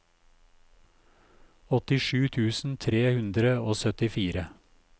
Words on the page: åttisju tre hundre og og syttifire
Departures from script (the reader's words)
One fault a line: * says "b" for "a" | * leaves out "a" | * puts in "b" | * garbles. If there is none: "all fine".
* puts in "tusen"
* leaves out "og"